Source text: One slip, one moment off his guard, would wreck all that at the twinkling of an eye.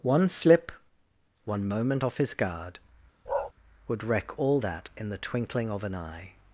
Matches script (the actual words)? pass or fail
fail